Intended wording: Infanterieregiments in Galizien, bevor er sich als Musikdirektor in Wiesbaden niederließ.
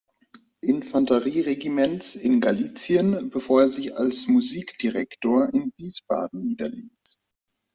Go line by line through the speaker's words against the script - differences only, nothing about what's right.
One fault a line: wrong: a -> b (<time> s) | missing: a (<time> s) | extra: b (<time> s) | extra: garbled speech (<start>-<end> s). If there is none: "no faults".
no faults